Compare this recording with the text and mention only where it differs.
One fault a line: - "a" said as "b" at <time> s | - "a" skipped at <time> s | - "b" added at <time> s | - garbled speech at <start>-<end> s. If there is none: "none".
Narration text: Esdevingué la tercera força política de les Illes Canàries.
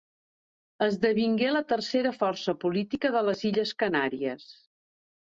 none